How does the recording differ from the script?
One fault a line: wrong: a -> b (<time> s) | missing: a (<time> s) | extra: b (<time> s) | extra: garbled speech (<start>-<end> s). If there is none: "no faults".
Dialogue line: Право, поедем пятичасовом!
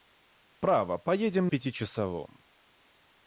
no faults